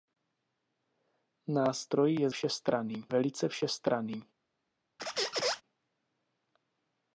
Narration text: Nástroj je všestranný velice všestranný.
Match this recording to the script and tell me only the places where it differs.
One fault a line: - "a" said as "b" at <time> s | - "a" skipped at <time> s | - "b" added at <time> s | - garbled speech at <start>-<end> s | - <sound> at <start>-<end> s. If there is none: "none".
- squeak at 5.0-5.6 s